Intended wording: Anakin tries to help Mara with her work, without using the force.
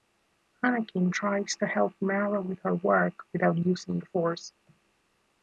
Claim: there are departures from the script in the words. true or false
false